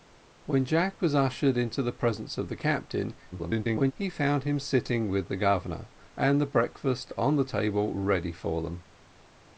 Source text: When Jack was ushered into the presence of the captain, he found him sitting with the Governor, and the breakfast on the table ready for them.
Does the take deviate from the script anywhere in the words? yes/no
yes